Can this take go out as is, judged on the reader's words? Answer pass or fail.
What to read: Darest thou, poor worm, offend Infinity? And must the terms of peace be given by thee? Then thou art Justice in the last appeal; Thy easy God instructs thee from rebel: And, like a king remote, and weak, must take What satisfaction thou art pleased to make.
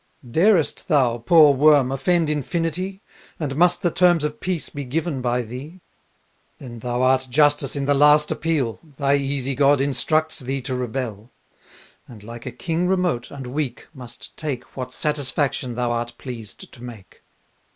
fail